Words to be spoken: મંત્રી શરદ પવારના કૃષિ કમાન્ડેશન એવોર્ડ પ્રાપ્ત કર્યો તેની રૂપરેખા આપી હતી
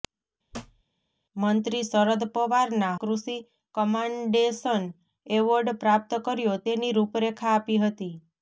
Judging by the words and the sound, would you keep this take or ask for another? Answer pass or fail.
fail